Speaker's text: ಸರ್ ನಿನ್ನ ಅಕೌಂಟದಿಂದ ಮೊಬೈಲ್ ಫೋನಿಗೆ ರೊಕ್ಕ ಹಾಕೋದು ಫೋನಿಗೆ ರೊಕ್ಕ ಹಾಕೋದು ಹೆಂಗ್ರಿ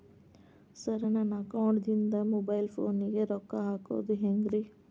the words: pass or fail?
fail